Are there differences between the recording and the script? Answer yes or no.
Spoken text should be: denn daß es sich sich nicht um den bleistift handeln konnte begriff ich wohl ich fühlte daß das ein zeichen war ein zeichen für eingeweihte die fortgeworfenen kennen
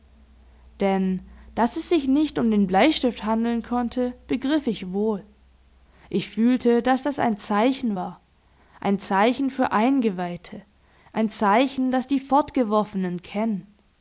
yes